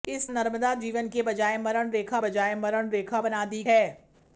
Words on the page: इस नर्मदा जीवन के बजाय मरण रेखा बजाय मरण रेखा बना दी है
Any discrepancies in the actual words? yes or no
no